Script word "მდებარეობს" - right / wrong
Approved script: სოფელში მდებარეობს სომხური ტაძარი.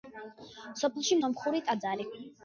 wrong